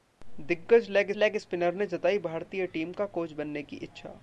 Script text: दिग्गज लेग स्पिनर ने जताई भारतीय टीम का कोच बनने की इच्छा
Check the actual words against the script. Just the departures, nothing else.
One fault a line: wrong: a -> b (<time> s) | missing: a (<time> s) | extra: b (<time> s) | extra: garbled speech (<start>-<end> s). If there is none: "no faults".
extra: लेग (1.2 s)